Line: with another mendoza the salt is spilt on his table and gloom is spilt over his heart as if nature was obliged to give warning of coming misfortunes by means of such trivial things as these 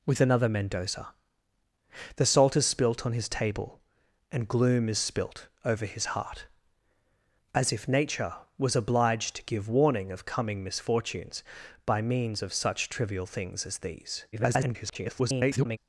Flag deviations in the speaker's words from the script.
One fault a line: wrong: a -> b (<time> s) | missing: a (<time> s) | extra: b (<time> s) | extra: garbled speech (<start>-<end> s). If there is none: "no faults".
extra: garbled speech (14.3-15.8 s)